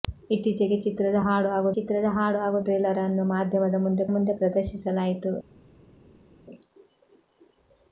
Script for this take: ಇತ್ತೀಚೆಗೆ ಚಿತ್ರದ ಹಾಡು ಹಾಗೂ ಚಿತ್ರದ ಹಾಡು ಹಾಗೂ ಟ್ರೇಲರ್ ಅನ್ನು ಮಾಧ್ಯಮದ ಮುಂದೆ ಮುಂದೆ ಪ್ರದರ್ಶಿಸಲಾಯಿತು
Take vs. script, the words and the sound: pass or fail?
pass